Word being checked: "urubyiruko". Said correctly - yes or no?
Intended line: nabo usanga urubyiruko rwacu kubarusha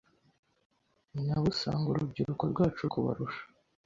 yes